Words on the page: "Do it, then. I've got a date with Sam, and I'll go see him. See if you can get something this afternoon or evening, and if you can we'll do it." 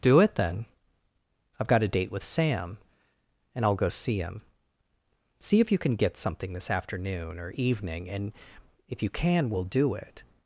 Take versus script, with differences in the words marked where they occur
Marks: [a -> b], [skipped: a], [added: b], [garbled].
"Do it, then. I've got a date with Sam, and I'll go see him. See if you can get something this afternoon or evening, and if you can we'll do it."